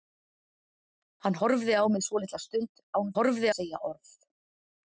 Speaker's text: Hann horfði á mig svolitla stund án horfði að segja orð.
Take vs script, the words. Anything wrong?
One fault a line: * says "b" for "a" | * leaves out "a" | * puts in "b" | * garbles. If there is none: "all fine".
all fine